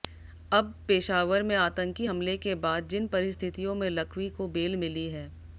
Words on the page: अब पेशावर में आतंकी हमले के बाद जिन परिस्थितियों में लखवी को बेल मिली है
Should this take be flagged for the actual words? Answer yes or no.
no